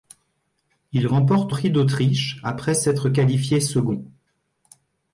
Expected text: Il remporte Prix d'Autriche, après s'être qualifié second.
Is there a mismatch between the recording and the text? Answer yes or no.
no